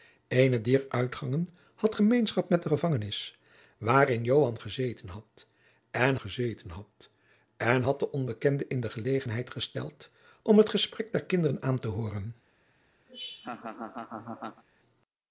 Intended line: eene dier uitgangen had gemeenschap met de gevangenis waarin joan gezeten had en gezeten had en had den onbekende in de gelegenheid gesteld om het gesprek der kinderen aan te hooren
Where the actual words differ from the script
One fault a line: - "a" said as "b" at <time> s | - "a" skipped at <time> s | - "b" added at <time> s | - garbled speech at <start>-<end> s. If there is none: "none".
none